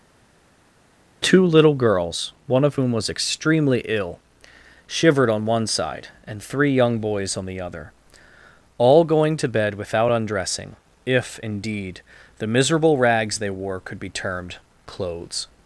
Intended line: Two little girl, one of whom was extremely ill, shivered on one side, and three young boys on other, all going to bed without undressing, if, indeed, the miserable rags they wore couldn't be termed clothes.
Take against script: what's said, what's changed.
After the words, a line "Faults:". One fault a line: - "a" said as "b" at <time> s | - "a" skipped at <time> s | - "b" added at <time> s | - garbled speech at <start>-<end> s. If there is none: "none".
Two little girls, one of whom was extremely ill, shivered on one side, and three young boys on the other, all going to bed without undressing, if, indeed, the miserable rags they wore could be termed clothes.
Faults:
- "girl" said as "girls" at 1.7 s
- "the" added at 7.5 s
- "couldn't" said as "could" at 13.8 s